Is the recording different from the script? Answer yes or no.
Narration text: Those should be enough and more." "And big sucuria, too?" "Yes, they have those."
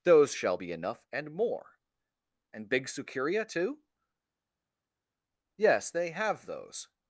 yes